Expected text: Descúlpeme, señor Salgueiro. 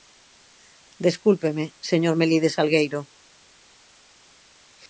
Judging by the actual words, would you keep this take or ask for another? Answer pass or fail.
fail